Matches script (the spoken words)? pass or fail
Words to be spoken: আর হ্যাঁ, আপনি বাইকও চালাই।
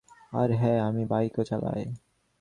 fail